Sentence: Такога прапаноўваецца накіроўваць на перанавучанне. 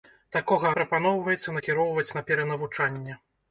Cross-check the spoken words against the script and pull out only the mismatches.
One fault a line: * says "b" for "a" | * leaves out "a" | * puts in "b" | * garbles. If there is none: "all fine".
all fine